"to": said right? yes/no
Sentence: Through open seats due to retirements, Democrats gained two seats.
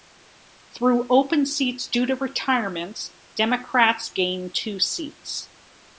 yes